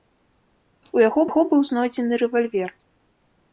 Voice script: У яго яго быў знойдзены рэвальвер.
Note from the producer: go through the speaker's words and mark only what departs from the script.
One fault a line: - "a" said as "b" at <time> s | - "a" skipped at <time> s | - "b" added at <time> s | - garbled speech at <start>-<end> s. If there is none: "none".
none